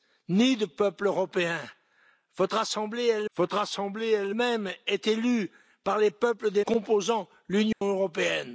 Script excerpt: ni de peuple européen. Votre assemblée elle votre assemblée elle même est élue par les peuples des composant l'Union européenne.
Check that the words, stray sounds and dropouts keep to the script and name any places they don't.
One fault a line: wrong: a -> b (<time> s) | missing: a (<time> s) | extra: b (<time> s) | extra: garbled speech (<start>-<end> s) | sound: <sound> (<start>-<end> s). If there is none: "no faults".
sound: dropout (7.7-7.8 s)